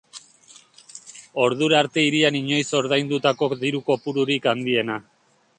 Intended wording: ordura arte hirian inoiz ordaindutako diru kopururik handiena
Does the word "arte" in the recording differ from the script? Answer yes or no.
no